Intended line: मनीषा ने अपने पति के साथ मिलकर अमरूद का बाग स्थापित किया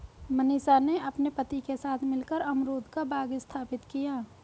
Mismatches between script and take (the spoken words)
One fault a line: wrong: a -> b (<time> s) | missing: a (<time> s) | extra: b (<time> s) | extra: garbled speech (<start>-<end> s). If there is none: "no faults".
no faults